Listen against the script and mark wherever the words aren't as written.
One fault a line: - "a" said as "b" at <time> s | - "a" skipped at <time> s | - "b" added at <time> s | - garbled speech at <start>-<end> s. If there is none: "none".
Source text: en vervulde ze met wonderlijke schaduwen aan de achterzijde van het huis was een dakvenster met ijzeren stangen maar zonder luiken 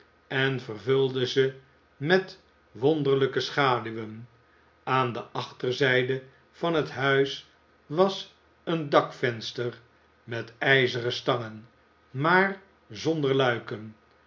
none